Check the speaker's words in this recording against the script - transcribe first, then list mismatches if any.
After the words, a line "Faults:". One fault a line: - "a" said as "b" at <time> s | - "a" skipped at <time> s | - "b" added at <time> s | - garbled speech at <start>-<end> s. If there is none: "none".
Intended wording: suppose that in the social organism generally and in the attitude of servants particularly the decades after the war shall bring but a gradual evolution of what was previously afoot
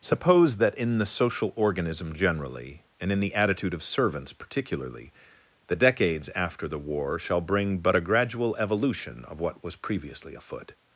suppose that in the social organism generally and in the attitude of servants particularly the decades after the war shall bring but a gradual evolution of what was previously afoot
Faults:
none